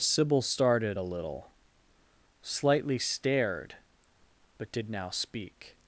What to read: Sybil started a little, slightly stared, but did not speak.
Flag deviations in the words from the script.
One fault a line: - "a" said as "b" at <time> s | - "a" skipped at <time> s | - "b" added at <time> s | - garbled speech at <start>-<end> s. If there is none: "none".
- "not" said as "now" at 4.9 s